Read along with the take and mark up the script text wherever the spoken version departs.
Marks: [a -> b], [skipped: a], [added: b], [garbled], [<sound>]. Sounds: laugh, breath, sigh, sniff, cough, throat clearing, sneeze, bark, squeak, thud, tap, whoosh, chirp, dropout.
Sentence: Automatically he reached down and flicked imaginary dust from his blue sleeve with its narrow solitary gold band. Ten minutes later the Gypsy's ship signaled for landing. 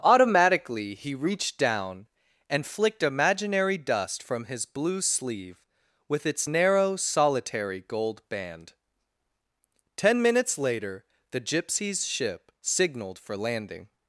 Automatically he reached down and flicked imaginary dust from his blue sleeve with its narrow solitary gold band. Ten minutes later the Gypsy's ship signaled for landing.